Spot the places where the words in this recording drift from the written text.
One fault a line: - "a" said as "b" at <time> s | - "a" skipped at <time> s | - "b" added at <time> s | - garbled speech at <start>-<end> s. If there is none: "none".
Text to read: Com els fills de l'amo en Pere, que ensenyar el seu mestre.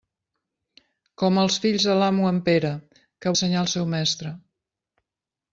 none